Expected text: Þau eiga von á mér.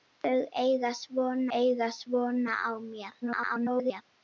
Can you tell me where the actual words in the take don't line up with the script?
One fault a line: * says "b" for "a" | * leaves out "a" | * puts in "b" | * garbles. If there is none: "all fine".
* puts in "eiga von"
* garbles